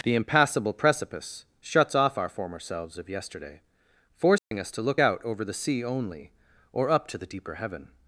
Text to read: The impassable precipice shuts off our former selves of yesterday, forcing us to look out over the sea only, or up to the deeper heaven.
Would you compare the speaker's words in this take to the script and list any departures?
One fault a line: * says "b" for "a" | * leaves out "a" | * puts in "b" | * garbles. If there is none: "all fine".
all fine